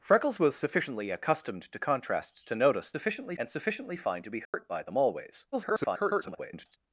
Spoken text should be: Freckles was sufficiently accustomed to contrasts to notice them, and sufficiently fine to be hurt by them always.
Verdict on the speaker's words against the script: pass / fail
fail